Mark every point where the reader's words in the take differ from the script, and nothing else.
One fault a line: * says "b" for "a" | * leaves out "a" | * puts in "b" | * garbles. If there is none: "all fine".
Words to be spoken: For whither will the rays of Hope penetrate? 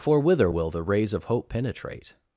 all fine